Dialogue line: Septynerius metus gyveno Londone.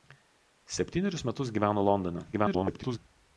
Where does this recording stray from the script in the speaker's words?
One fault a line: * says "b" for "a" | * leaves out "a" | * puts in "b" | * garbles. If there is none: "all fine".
* garbles